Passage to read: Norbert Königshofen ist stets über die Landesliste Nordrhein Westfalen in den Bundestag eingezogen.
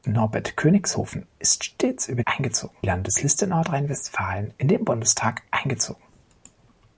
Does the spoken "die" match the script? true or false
false